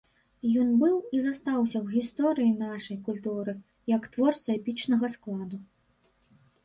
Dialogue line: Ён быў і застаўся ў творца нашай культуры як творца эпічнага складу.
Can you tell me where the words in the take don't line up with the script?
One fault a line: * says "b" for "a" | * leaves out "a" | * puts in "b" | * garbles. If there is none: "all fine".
* says "гісторыі" for "творца"